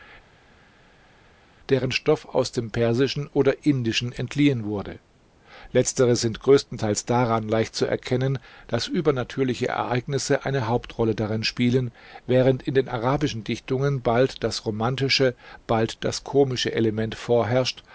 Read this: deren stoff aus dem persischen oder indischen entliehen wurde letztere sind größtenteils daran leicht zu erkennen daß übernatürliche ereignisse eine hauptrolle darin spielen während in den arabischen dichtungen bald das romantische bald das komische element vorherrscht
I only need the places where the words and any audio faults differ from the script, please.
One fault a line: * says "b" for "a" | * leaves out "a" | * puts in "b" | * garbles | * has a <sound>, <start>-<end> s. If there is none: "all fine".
all fine